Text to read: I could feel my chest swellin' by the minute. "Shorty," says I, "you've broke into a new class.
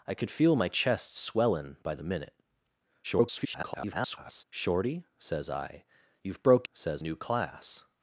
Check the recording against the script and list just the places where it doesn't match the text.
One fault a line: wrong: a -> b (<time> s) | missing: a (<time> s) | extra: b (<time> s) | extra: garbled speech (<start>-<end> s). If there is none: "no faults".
extra: garbled speech (3.0-4.4 s)
wrong: into -> says (6.7 s)